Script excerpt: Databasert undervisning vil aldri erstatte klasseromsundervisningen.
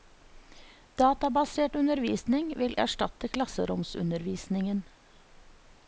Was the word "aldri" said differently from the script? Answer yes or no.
yes